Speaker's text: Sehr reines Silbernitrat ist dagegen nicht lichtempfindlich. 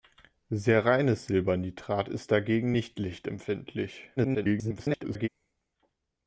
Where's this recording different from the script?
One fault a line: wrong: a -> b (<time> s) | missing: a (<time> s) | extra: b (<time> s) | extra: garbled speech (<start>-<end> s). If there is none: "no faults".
extra: garbled speech (4.2-5.3 s)